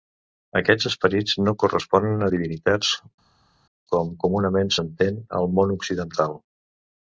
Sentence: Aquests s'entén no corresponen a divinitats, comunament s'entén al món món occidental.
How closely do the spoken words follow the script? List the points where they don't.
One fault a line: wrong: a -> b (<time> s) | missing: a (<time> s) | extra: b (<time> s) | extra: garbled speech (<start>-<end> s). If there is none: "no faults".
wrong: s'entén -> esperits (0.9 s)
extra: com (3.9 s)
missing: món (5.8 s)